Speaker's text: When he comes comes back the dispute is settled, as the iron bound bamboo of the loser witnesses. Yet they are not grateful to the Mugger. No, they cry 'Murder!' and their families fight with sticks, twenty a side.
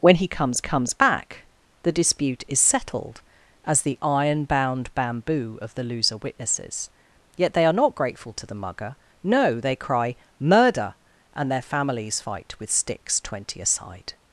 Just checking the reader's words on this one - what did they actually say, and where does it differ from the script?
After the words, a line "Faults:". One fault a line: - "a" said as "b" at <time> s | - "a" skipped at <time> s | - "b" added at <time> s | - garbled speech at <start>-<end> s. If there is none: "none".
When he comes comes back the dispute is settled, as the iron bound bamboo of the loser witnesses. Yet they are not grateful to the Mugger. No, they cry 'Murder!' and their families fight with sticks, twenty a side.
Faults:
none